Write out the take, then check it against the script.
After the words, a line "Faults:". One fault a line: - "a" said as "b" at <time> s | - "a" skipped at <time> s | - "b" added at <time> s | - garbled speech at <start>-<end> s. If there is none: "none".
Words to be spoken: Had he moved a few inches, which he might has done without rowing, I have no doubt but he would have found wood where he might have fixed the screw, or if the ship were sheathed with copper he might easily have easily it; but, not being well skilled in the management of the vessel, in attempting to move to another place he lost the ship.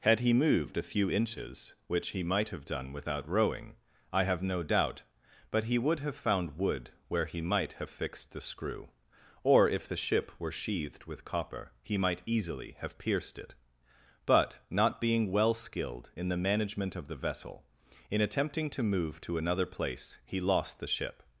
Had he moved a few inches, which he might have done without rowing, I have no doubt but he would have found wood where he might have fixed the screw, or if the ship were sheathed with copper he might easily have pierced it; but, not being well skilled in the management of the vessel, in attempting to move to another place he lost the ship.
Faults:
- "has" said as "have" at 2.5 s
- "easily" said as "pierced" at 13.0 s